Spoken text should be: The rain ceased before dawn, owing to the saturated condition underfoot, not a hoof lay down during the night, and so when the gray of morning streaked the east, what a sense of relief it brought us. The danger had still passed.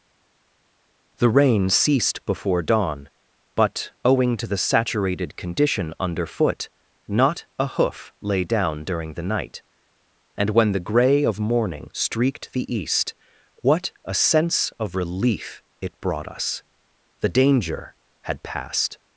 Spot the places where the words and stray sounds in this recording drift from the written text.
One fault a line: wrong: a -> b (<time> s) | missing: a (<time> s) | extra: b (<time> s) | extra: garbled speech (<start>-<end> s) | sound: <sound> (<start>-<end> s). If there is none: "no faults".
extra: but (3.5 s)
missing: so (10.5 s)
missing: still (18.4 s)